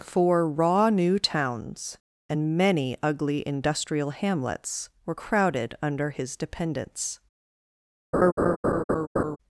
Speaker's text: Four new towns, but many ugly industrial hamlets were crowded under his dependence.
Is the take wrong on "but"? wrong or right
wrong